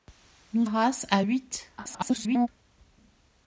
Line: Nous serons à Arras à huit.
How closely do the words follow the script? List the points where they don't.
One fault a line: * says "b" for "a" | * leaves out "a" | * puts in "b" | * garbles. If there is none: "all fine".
* leaves out "serons à"
* garbles